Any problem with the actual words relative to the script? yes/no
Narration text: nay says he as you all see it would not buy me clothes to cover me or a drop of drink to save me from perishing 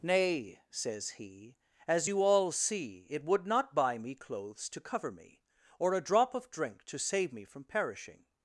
no